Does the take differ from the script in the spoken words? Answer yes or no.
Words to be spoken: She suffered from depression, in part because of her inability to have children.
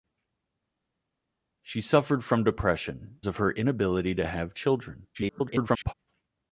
yes